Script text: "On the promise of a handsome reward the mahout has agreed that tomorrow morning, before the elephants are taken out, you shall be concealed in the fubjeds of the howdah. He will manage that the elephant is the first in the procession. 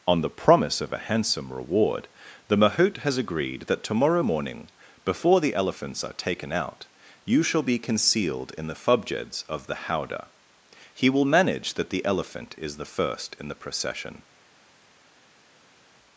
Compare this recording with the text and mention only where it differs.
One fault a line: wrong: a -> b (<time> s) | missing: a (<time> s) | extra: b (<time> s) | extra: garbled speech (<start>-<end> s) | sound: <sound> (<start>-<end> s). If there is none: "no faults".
no faults